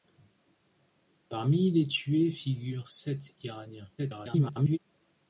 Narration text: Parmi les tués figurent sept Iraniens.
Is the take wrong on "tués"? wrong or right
right